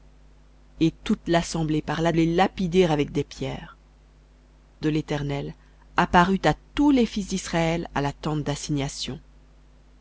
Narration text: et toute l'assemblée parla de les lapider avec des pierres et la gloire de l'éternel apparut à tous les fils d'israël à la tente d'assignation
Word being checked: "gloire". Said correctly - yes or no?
no